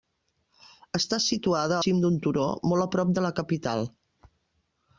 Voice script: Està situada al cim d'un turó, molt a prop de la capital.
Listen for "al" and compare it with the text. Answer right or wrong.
wrong